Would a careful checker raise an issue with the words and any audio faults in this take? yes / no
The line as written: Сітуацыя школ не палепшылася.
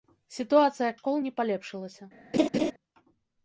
yes